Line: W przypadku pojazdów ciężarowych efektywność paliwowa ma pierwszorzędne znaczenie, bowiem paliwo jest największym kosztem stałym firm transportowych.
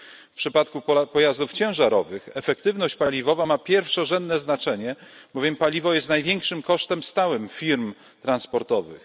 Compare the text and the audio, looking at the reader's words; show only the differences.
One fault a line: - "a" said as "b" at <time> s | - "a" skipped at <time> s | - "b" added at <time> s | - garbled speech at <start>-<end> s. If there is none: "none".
none